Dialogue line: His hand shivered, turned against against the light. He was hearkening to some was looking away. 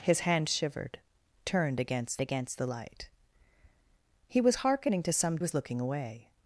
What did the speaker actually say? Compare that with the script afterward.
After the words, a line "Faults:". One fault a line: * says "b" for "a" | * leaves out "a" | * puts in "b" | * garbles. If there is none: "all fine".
His hand shivered, turned against against the light. He was hearkening to some was looking away.
Faults:
all fine